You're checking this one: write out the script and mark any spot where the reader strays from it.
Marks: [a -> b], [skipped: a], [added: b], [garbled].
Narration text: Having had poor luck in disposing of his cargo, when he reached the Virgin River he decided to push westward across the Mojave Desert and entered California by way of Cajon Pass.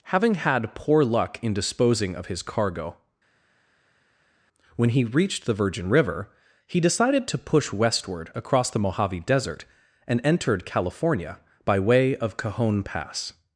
Having had poor luck in disposing of his cargo, when he reached the Virgin River he decided to push westward across the Mojave Desert and entered California by way of Cajon Pass.